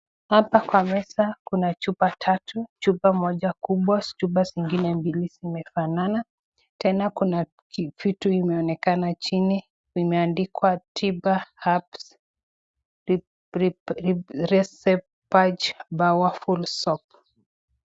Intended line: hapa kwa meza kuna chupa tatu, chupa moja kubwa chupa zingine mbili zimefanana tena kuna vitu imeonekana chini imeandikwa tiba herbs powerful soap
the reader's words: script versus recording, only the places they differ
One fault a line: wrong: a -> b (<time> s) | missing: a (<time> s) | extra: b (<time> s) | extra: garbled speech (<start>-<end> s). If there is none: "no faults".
no faults